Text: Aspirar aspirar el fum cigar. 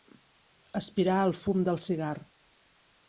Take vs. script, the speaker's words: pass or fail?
fail